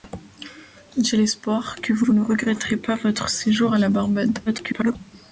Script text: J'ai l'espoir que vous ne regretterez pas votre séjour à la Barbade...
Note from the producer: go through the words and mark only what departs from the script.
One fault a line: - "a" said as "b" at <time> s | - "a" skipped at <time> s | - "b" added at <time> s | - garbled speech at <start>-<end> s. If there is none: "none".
- "vous" added at 2.0 s
- garbled speech at 4.5-5.0 s